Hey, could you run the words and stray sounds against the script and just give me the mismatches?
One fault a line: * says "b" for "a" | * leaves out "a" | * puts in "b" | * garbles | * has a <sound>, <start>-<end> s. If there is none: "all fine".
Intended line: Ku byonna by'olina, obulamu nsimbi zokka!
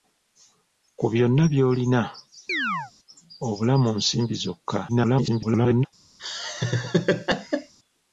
* has a chirp, 2.5-2.9 s
* garbles
* has a laugh, 6.2-7.7 s